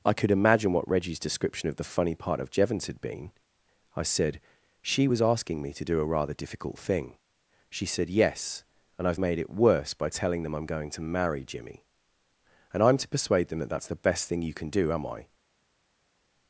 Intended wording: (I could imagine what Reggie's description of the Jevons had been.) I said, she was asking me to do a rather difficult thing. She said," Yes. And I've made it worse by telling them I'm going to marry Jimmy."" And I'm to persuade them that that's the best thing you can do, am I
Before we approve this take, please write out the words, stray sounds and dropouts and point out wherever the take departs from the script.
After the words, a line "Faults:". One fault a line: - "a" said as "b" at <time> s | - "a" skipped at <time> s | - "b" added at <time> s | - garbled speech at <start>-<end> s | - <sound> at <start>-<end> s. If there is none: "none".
(I could imagine what Reggie's description of the funny part of Jevons had been.) I said, she was asking me to do a rather difficult thing. She said," Yes. And I've made it worse by telling them I'm going to marry Jimmy."" And I'm to persuade them that that's the best thing you can do, am I
Faults:
- "funny part of" added at 1.8 s